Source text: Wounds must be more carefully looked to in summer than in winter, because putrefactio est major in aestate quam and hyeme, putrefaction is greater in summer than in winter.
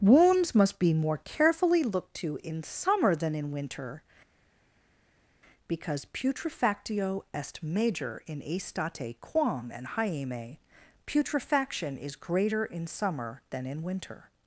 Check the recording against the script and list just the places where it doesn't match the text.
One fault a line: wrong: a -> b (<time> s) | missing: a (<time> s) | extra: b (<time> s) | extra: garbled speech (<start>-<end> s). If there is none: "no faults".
no faults